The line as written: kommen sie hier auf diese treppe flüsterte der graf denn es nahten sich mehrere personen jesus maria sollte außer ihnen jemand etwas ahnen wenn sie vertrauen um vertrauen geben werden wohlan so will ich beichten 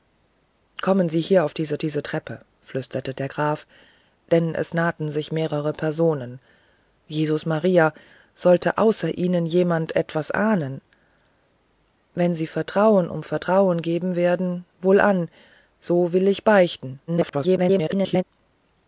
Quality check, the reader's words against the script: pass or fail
fail